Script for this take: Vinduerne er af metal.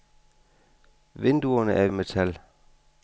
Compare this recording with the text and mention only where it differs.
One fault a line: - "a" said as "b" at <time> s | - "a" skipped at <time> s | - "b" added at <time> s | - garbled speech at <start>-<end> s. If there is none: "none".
none